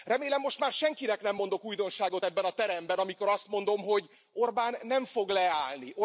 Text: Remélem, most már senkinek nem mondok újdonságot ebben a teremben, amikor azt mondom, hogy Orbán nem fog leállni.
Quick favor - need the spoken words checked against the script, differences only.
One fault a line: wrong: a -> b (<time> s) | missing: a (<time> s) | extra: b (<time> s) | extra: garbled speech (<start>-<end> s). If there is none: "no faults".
no faults